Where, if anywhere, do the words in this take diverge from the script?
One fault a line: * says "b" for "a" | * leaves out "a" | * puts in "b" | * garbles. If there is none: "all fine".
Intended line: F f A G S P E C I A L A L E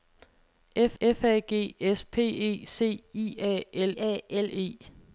all fine